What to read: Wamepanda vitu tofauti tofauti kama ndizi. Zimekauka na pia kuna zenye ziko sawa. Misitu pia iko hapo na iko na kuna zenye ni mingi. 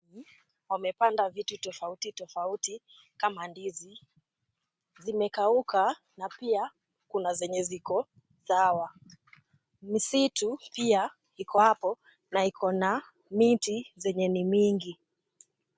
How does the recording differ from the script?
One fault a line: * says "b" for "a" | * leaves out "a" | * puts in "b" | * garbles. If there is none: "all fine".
* says "miti" for "kuna"